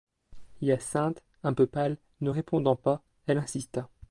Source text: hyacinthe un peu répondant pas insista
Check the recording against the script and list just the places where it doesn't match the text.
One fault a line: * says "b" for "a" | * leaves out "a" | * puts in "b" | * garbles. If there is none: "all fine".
* puts in "pâle ne"
* puts in "elle"